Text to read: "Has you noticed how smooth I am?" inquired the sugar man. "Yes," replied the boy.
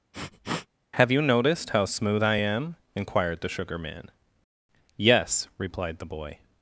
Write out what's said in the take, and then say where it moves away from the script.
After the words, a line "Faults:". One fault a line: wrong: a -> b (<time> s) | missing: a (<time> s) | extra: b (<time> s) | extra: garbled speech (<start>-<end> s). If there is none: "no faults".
"Have you noticed how smooth I am?" inquired the sugar man. "Yes," replied the boy.
Faults:
wrong: Has -> Have (0.9 s)